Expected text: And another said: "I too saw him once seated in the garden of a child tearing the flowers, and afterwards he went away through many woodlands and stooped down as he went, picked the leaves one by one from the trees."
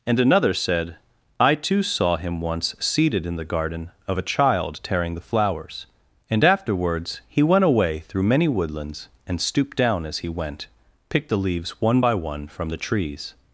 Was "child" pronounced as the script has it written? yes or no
yes